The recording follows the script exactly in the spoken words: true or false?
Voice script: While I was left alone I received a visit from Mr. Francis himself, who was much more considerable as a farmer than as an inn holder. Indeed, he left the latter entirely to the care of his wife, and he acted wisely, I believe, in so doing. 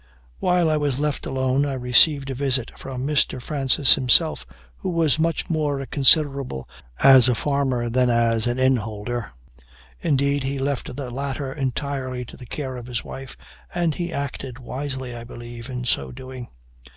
true